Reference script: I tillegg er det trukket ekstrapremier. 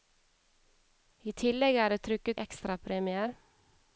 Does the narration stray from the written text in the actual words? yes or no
no